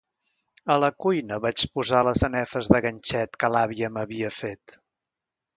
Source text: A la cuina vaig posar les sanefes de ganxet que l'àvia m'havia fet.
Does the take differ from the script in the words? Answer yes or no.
no